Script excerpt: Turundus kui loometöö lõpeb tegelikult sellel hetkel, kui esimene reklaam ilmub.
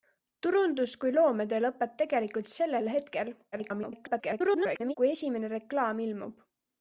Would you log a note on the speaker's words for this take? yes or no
yes